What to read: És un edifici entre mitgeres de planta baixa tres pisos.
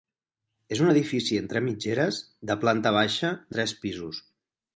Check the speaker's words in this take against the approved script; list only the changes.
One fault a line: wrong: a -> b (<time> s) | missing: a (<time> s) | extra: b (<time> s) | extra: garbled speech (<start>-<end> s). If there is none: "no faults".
no faults